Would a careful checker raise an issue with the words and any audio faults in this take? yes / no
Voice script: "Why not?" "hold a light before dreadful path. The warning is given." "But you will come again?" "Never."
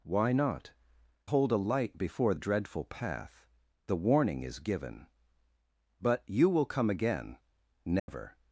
yes